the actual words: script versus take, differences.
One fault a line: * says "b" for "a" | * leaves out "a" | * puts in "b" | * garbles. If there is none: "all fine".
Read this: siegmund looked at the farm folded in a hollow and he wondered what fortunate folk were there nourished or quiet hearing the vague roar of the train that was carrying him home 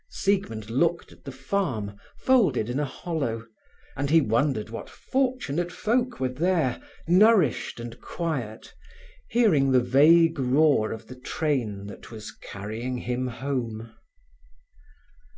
* says "and" for "or"